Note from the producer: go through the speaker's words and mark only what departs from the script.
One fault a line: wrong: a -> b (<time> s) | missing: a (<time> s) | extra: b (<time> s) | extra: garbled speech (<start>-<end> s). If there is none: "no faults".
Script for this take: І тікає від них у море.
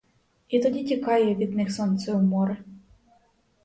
extra: тоді (0.6 s)
extra: сонце (1.7 s)